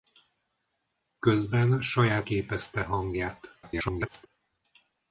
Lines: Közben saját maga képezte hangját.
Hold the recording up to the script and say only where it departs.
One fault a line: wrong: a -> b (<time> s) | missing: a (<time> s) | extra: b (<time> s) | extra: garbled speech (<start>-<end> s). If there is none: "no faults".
missing: maga (2.3 s)
extra: garbled speech (3.6-4.3 s)